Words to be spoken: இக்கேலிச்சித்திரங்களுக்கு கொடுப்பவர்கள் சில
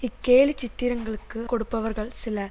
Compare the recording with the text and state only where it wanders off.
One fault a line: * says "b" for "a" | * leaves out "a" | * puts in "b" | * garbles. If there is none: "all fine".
all fine